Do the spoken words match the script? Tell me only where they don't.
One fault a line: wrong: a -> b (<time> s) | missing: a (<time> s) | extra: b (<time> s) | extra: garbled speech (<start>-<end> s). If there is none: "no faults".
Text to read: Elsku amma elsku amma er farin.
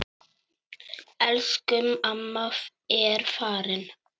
missing: elsku amma (2.5 s)